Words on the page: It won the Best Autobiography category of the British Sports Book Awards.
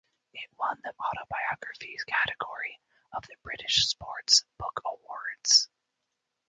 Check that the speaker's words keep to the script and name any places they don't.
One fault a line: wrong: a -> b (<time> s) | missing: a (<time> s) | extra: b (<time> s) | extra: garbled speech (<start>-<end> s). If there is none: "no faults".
missing: Best (0.9 s)